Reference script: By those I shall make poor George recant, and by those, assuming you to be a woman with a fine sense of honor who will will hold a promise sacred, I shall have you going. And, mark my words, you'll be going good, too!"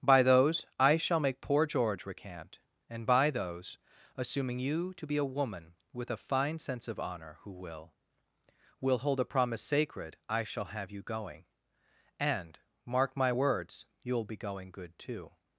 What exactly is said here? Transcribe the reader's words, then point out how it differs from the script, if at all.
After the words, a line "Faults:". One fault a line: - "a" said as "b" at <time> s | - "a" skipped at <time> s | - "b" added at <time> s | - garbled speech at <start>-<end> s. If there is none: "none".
By those I shall make poor George recant, and by those, assuming you to be a woman with a fine sense of honor who will will hold a promise sacred, I shall have you going. And, mark my words, you'll be going good, too!"
Faults:
none